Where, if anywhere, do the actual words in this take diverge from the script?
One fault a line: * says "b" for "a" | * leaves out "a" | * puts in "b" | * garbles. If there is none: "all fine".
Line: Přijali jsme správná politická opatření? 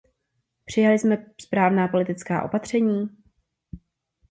all fine